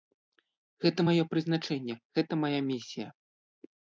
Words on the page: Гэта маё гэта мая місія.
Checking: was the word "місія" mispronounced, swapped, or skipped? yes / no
no